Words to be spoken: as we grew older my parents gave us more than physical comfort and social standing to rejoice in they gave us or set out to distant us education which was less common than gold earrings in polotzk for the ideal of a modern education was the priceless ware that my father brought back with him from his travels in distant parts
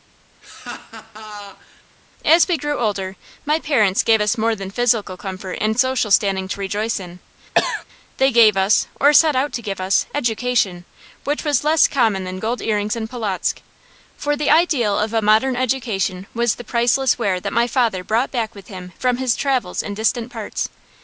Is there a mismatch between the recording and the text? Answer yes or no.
yes